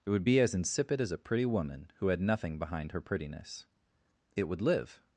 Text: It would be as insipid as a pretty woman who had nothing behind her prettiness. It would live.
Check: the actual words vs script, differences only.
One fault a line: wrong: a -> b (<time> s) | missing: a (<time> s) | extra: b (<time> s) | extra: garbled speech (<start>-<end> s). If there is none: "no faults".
no faults